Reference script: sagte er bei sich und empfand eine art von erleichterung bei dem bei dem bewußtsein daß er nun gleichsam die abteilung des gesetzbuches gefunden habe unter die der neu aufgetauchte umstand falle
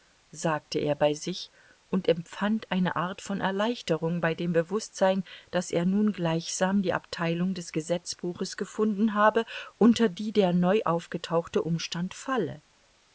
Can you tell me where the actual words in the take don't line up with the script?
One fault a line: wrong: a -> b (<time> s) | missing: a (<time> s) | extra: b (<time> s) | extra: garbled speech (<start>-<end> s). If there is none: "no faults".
missing: bei dem (4.5 s)